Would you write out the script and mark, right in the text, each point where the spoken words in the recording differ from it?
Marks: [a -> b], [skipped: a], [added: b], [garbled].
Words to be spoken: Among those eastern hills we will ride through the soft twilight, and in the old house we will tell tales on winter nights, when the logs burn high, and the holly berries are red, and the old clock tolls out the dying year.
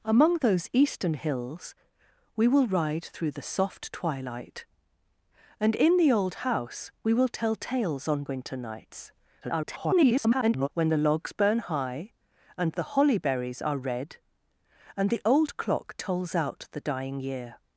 Among those eastern hills we will ride through the soft twilight, and in the old house we will tell tales on winter nights, [garbled] when the logs burn high, and the holly berries are red, and the old clock tolls out the dying year.